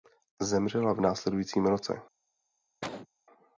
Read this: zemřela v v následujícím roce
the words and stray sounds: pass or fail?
fail